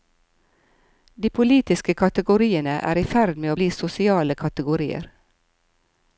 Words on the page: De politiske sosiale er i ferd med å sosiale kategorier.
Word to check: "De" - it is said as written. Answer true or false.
true